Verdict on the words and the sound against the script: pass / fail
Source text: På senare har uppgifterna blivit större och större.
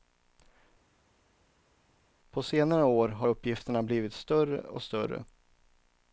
fail